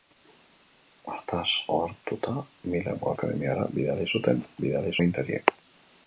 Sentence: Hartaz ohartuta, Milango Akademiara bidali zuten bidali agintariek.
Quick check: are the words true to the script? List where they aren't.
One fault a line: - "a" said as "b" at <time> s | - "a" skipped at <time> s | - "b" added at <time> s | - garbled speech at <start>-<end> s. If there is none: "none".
none